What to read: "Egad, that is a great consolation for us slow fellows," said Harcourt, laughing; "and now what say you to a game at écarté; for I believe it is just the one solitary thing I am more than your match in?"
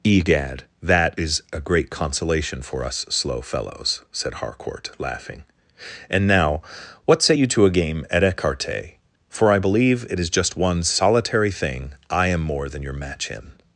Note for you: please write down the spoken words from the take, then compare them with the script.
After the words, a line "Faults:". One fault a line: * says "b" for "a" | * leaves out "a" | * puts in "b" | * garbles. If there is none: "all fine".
"Egad, that is a great consolation for us slow fellows," said Harcourt, laughing; "and now what say you to a game at écarté; for I believe it is just one solitary thing I am more than your match in?"
Faults:
* leaves out "the"